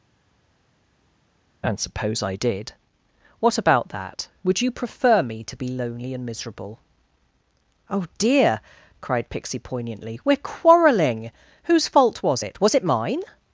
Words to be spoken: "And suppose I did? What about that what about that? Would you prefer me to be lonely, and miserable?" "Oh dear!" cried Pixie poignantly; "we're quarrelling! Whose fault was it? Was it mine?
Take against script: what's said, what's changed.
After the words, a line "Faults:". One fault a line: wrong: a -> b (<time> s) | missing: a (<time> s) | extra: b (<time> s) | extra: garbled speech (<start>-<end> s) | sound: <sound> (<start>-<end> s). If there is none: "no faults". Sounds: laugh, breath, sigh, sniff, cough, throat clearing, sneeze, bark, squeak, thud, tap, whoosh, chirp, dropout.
"And suppose I did? What about that? Would you prefer me to be lonely, and miserable?" "Oh dear!" cried Pixie poignantly; "we're quarrelling! Whose fault was it? Was it mine?
Faults:
missing: what about that (4.3 s)